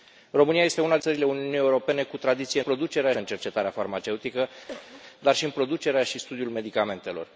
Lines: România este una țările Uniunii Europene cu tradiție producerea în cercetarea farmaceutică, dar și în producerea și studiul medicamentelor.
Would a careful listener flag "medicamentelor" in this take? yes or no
no